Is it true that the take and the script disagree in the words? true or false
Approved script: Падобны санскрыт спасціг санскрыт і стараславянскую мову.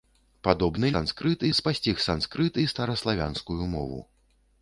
false